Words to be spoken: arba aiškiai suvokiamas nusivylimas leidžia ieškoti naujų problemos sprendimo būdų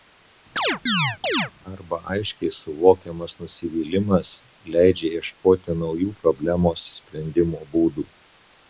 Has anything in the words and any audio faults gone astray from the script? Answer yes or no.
yes